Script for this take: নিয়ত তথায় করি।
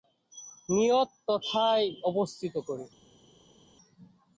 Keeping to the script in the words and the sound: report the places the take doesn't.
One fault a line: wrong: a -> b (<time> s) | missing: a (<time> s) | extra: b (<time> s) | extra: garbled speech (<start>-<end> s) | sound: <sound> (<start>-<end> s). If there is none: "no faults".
extra: অবস্থিত (2.0 s)